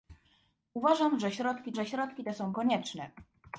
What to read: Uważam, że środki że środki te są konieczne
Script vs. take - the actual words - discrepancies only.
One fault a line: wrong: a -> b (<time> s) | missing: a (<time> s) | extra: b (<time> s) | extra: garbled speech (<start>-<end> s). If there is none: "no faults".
no faults